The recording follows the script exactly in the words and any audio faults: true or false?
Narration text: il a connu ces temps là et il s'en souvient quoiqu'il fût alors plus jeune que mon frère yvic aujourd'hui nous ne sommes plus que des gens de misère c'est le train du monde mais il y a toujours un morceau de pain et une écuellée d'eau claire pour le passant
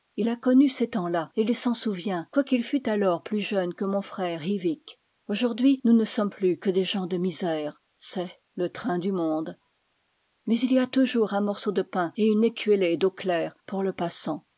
true